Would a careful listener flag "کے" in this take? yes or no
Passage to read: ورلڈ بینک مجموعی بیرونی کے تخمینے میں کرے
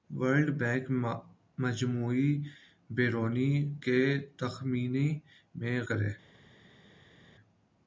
no